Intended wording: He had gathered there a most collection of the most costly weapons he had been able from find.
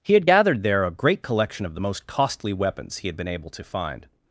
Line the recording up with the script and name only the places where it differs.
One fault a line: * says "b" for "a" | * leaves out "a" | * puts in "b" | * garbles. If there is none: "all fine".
* says "great" for "most"
* says "to" for "from"